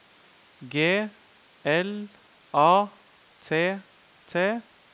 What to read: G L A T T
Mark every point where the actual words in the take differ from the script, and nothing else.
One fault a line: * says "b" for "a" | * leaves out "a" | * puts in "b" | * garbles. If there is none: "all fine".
all fine